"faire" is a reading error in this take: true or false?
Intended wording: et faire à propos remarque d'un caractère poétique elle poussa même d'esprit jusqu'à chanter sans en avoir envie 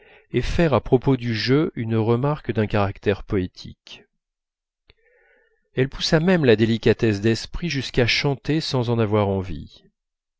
false